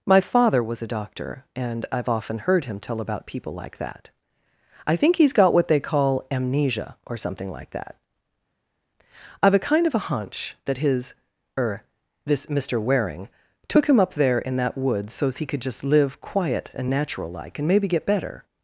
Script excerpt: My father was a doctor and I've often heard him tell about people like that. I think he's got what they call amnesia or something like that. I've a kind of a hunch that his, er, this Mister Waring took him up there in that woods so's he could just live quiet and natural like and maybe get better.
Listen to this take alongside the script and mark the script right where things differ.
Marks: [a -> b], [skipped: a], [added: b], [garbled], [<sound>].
My father was a doctor and I've often heard him tell about people like that. I think he's got what they call amnesia or something like that. I've a kind of a hunch that his, er, this Mister Waring took him up there in that woods so's he could just live quiet and natural like and maybe get better.